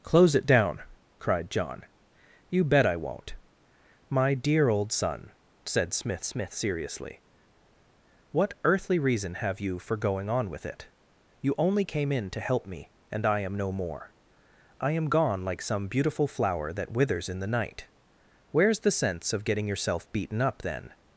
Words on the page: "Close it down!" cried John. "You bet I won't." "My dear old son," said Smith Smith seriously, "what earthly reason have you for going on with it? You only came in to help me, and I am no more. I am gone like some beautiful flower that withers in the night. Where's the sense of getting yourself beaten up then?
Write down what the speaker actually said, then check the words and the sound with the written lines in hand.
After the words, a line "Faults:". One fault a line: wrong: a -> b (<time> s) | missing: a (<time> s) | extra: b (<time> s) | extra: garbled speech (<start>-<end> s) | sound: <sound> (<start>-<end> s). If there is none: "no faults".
"Close it down!" cried John. "You bet I won't." "My dear old son," said Smith Smith seriously, "what earthly reason have you for going on with it? You only came in to help me, and I am no more. I am gone like some beautiful flower that withers in the night. Where's the sense of getting yourself beaten up then?
Faults:
no faults